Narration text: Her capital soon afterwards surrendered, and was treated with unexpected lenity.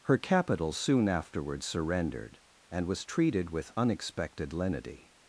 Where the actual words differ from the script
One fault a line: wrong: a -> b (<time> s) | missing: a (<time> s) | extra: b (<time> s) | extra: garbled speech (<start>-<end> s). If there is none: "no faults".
no faults